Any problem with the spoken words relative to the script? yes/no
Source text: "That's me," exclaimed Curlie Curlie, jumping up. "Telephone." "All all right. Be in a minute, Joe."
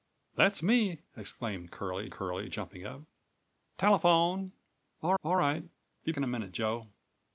no